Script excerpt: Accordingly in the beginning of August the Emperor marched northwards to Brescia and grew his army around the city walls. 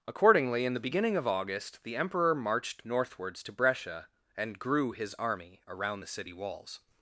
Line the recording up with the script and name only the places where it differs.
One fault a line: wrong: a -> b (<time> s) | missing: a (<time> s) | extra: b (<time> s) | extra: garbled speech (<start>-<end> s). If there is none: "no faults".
no faults